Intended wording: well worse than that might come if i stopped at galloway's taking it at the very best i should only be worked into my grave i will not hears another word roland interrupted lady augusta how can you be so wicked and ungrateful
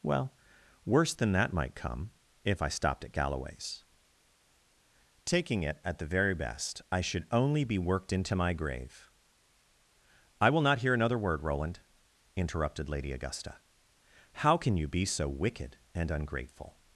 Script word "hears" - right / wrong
wrong